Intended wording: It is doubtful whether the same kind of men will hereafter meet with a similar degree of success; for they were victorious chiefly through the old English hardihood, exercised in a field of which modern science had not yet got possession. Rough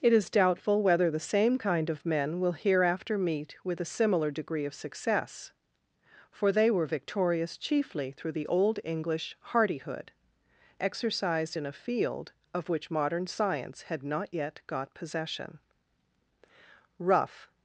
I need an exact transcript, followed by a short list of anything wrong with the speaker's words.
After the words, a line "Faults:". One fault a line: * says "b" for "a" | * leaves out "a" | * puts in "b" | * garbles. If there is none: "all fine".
It is doubtful whether the same kind of men will hereafter meet with a similar degree of success; for they were victorious chiefly through the old English hardihood, exercised in a field of which modern science had not yet got possession. Rough
Faults:
all fine